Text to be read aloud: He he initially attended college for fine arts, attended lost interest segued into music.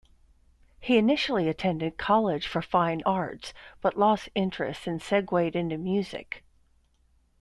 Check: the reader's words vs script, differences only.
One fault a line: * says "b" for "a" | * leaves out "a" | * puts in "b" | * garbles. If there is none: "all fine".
* leaves out "he"
* says "but" for "attended"
* puts in "and"